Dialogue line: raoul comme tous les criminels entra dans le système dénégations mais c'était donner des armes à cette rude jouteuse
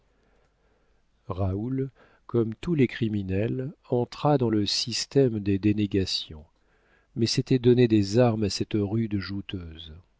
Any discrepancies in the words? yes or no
yes